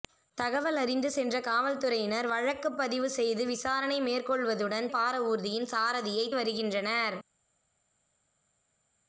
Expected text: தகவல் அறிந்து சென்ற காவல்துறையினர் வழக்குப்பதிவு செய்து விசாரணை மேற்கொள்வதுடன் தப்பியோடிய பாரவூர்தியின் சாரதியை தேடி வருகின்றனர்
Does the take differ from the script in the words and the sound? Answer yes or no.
yes